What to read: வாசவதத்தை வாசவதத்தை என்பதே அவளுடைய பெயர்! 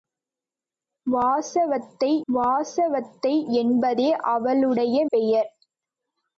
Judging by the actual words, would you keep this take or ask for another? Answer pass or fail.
pass